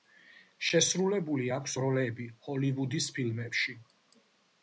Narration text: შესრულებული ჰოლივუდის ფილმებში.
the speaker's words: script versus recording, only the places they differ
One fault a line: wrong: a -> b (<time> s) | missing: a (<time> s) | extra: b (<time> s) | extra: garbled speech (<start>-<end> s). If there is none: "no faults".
extra: აქვს როლები (1.6 s)